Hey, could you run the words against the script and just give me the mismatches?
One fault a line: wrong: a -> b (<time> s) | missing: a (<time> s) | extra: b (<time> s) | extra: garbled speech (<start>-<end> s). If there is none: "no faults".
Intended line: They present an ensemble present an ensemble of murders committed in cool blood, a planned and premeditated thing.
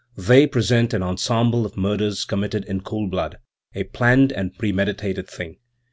missing: present an ensemble (1.6 s)